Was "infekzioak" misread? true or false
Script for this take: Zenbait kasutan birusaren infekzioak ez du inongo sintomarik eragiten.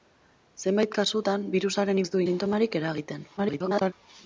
true